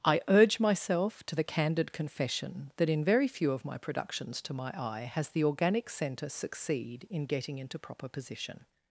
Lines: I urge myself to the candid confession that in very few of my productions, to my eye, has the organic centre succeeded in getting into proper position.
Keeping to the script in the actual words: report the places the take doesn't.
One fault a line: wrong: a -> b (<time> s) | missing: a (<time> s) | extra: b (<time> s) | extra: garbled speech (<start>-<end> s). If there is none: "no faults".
wrong: succeeded -> succeed (6.3 s)